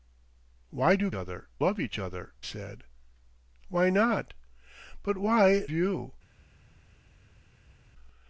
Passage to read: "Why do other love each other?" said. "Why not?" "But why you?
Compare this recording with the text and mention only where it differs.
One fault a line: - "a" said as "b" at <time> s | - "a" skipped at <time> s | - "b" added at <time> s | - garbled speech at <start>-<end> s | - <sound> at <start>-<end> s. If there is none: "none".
none